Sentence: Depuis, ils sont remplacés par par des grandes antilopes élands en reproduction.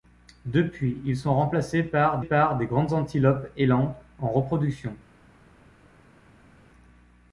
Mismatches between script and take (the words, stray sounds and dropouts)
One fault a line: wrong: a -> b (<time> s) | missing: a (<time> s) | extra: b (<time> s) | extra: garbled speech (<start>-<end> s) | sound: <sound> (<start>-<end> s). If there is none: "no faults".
no faults